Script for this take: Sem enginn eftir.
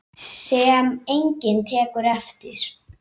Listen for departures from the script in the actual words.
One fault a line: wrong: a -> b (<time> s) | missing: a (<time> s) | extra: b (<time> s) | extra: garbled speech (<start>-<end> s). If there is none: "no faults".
extra: tekur (1.7 s)